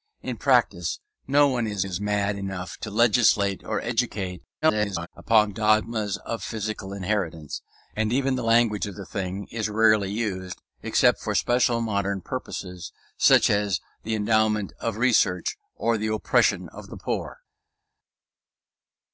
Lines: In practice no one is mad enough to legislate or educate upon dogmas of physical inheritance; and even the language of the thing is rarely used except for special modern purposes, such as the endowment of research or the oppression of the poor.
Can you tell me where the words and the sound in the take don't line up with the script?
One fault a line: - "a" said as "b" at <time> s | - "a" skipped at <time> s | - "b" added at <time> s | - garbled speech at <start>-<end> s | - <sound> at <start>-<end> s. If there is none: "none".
- "is" added at 1.8 s
- garbled speech at 4.6-5.1 s